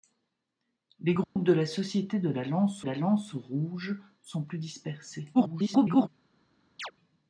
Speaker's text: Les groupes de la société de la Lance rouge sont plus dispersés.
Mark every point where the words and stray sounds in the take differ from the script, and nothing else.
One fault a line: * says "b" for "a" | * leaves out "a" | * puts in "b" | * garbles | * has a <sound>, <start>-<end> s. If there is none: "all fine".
* has a dropout, 1.2-1.4 s
* puts in "la Lance"
* garbles
* has a chirp, 6.8-6.9 s